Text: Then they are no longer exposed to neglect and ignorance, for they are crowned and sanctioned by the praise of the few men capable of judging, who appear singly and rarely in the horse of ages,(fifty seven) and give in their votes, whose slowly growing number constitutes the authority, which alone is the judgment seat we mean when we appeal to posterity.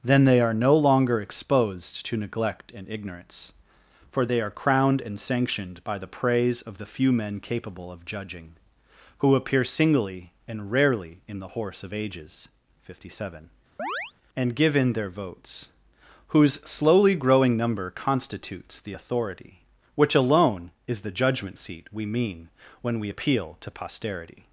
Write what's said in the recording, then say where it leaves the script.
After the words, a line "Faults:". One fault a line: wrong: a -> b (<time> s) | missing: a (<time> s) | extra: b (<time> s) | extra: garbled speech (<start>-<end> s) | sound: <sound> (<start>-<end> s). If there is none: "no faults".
Then they are no longer exposed to neglect and ignorance, for they are crowned and sanctioned by the praise of the few men capable of judging, who appear singly and rarely in the horse of ages,(fifty seven) and give in their votes, whose slowly growing number constitutes the authority, which alone is the judgment seat we mean when we appeal to posterity.
Faults:
sound: chirp (13.8-14.1 s)